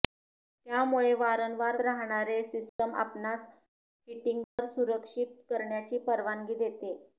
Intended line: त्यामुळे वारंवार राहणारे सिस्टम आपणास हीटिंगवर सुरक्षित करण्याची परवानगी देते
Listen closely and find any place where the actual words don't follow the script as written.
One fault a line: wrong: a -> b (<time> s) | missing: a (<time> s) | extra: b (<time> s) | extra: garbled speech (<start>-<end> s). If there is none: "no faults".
no faults